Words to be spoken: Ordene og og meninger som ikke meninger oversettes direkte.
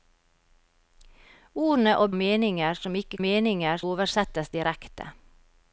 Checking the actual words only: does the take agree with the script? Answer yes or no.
yes